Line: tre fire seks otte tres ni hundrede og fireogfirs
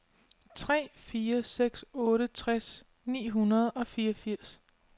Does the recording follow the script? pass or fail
pass